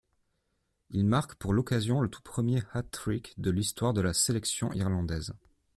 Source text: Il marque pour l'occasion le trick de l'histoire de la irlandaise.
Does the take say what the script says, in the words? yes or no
no